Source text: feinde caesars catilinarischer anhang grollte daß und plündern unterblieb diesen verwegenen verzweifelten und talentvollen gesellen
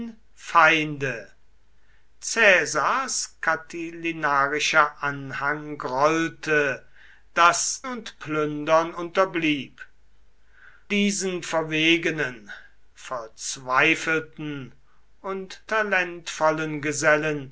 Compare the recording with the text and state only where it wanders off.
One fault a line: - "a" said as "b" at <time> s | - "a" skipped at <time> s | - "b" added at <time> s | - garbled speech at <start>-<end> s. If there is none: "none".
none